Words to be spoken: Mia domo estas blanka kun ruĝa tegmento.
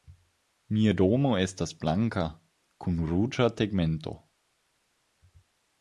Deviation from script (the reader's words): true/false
false